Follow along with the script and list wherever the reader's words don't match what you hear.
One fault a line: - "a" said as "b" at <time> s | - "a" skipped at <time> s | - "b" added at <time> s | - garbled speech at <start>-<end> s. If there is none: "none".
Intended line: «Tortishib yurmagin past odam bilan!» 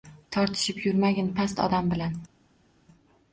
none